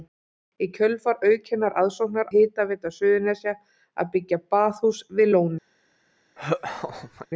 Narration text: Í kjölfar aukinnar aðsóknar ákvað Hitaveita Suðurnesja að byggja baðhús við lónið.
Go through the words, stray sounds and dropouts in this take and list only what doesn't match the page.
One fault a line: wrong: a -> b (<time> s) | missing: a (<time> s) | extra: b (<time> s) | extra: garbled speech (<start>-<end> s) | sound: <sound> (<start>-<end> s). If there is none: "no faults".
missing: ákvað (2.3 s)
sound: laugh (6.4-7.3 s)